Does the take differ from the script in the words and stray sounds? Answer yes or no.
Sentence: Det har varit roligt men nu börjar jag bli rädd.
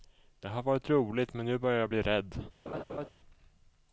yes